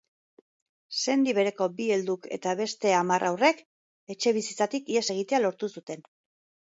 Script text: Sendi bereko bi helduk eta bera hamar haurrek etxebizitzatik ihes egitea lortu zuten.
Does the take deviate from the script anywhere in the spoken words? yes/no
yes